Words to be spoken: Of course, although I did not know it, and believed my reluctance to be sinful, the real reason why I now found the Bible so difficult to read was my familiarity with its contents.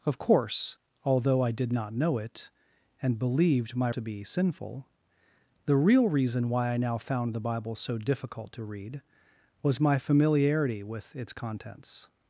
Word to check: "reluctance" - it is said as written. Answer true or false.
false